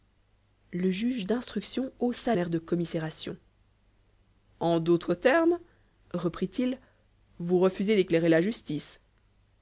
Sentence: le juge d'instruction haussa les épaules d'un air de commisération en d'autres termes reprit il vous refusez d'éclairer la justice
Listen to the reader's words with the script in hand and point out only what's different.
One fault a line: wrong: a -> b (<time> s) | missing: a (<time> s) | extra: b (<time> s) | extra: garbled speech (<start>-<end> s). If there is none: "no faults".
missing: les épaules d'un (2.4 s)